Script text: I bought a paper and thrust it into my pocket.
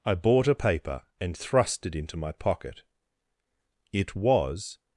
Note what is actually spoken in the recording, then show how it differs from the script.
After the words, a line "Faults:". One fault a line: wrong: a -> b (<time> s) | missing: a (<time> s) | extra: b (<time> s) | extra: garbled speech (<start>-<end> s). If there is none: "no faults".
I bought a paper and thrust it into my pocket. It was
Faults:
extra: It was (3.9 s)